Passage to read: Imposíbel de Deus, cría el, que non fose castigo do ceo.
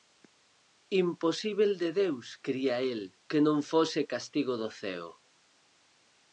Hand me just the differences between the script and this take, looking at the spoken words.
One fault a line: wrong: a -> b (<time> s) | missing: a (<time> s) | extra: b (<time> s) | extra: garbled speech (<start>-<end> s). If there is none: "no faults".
no faults